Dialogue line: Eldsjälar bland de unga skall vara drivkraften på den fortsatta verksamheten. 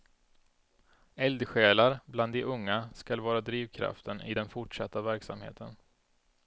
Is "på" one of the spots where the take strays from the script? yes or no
yes